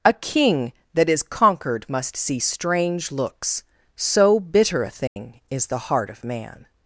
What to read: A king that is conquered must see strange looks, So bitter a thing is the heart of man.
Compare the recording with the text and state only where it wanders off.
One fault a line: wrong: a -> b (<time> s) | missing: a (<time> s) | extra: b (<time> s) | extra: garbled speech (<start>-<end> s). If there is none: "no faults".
no faults